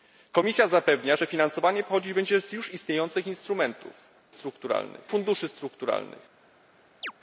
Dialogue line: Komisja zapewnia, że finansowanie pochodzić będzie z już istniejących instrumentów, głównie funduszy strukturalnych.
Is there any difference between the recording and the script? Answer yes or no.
yes